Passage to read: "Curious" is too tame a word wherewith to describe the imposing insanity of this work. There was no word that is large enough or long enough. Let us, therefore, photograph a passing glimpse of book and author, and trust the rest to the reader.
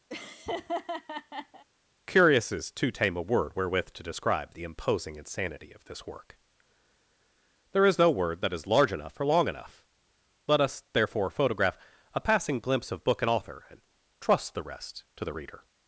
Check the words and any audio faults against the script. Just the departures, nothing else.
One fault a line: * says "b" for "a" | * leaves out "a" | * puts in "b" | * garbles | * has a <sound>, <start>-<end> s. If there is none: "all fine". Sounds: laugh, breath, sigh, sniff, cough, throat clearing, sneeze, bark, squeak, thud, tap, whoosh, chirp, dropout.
* has a laugh, 0.1-1.6 s
* says "is" for "was"